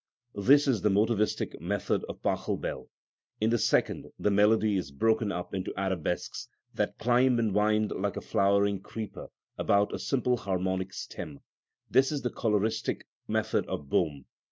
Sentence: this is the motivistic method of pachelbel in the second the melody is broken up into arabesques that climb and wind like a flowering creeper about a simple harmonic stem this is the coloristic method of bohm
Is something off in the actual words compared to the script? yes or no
no